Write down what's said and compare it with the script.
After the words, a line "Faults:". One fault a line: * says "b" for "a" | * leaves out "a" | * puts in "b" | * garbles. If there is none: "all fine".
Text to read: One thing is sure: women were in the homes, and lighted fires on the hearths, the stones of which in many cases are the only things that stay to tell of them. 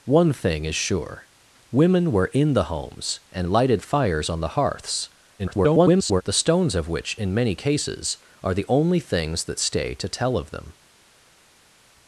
One thing is sure: women were in the homes, and lighted fires on the hearths, [garbled] the stones of which in many cases are the only things that stay to tell of them.
Faults:
* garbles